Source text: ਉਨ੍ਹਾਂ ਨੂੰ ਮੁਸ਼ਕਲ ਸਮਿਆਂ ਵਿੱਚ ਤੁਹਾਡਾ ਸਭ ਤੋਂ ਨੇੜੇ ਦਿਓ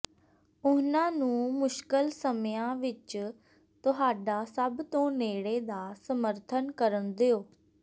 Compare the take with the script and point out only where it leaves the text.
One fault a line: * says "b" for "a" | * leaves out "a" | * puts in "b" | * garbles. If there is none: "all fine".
* puts in "ਦਾ ਸਮਰਥਨ ਕਰਨ"